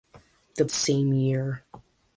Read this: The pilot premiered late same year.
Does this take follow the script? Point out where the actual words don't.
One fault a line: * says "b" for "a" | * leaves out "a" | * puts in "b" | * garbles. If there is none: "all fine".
* leaves out "pilot premiered late"